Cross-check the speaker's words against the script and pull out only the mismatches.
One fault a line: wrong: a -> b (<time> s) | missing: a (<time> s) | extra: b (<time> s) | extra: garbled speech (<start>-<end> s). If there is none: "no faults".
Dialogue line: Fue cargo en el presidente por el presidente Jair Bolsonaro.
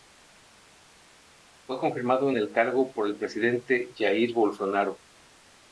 wrong: cargo -> confirmado (1.8 s)
wrong: presidente -> cargo (2.5 s)